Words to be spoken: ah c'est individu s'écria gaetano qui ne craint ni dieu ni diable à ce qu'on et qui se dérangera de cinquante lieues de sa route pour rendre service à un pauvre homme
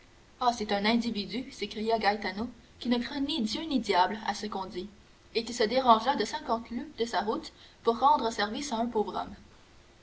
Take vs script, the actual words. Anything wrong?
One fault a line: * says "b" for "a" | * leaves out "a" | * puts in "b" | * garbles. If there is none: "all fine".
* puts in "un"
* puts in "dit"